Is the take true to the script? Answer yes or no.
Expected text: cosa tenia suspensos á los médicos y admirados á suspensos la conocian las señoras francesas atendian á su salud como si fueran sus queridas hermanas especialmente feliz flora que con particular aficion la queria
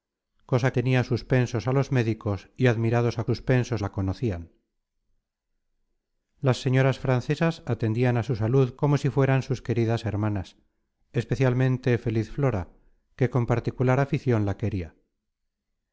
yes